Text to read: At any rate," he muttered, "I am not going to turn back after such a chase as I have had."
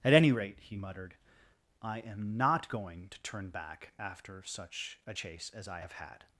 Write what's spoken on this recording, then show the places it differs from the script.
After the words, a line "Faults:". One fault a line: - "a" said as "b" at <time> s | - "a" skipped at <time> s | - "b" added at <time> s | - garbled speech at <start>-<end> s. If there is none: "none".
At any rate," he muttered, "I am not going to turn back after such a chase as I have had."
Faults:
none